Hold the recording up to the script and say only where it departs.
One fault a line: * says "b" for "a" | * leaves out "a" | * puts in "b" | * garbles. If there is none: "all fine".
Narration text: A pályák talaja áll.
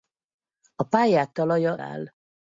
all fine